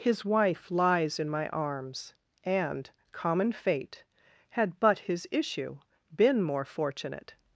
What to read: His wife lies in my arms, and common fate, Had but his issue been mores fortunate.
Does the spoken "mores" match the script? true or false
false